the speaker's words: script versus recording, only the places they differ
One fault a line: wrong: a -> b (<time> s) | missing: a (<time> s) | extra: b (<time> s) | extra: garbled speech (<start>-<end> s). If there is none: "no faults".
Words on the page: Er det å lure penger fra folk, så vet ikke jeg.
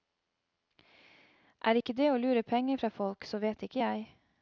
extra: ikke (1.7 s)